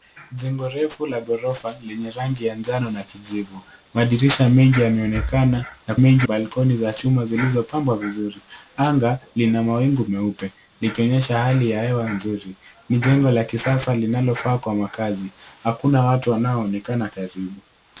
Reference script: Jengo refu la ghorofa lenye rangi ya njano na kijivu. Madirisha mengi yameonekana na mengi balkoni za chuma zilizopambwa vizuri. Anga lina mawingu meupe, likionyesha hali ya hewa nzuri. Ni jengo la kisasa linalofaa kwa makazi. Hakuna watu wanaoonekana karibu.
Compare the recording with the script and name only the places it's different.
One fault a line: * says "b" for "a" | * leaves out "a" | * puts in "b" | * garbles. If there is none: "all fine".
all fine